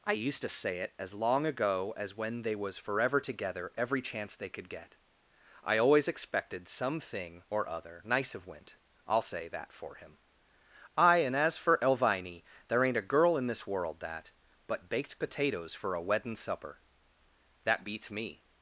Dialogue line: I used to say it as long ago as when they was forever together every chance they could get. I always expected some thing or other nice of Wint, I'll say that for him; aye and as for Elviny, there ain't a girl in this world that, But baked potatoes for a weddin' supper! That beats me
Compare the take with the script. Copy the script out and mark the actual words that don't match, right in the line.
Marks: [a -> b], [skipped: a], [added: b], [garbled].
I used to say it as long ago as when they was forever together every chance they could get. I always expected some thing or other nice of Wint, I'll say that for him; aye and as for Elviny, there ain't a girl in this world that, But baked potatoes for a weddin' supper! That beats me